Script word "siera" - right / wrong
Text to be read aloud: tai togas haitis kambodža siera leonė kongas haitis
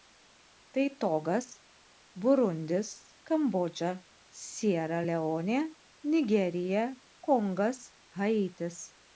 right